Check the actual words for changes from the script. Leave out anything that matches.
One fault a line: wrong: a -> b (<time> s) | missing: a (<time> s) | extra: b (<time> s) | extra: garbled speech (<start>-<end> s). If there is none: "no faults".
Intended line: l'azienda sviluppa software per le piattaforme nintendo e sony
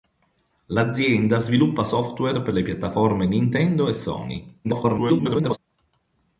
extra: garbled speech (4.6-5.6 s)